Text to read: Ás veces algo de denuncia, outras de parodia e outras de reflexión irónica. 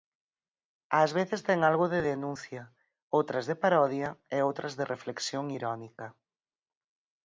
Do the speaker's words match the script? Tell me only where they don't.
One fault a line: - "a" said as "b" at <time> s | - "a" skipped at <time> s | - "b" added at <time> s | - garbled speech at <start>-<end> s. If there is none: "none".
- "ten" added at 1.5 s